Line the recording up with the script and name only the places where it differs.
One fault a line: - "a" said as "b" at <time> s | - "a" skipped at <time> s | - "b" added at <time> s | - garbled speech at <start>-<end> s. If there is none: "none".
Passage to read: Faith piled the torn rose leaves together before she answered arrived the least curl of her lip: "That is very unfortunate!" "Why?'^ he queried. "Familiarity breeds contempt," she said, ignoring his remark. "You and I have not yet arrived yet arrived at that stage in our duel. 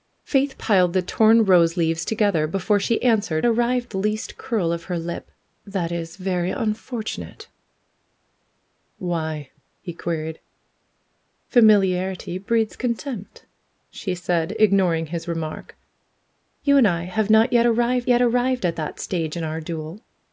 none